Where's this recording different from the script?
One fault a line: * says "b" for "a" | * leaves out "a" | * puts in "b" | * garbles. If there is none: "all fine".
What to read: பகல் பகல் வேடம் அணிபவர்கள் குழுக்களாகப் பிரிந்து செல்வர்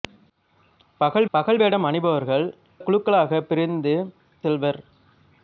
all fine